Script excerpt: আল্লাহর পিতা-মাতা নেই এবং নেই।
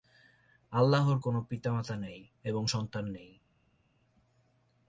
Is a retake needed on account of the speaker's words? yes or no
yes